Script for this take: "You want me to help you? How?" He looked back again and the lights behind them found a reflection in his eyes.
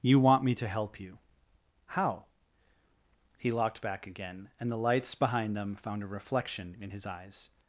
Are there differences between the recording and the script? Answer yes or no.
yes